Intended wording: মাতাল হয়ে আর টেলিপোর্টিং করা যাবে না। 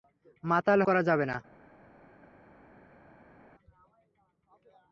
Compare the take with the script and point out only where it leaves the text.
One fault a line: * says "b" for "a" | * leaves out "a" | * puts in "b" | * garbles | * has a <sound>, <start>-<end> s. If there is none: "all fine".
* leaves out "হয়ে আর টেলিপোর্টিং"